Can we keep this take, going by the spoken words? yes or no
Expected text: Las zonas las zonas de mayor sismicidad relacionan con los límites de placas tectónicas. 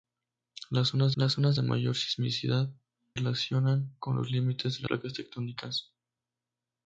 yes